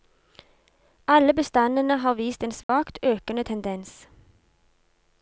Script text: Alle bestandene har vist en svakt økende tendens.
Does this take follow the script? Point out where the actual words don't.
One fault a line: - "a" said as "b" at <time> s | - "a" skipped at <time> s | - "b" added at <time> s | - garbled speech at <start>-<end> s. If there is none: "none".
none